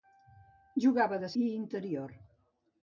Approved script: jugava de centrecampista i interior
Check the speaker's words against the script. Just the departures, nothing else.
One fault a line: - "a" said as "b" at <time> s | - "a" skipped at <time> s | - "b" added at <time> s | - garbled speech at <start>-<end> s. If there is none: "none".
- "centrecampista" skipped at 1.3 s